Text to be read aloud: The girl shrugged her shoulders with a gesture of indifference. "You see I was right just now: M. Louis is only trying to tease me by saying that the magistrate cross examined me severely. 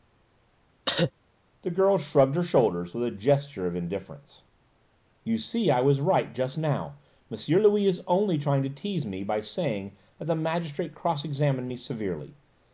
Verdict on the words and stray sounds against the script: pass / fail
fail